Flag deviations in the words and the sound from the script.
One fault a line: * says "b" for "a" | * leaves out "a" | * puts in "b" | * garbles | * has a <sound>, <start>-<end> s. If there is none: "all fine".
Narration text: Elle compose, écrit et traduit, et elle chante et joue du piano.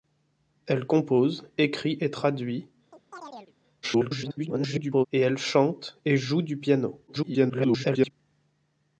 * has a chirp, 2.9-3.5 s
* garbles
* garbles